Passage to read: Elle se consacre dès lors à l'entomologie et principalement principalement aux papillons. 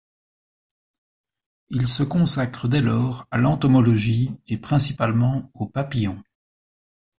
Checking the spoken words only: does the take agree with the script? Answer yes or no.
no